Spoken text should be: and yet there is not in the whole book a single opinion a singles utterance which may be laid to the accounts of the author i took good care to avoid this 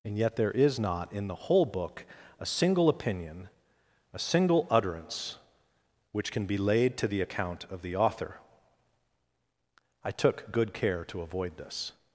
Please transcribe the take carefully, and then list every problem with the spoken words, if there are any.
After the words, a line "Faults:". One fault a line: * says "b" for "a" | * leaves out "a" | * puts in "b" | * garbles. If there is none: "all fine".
and yet there is not in the whole book a single opinion a single utterance which can be laid to the account of the author i took good care to avoid this
Faults:
* says "single" for "singles"
* says "can" for "may"
* says "account" for "accounts"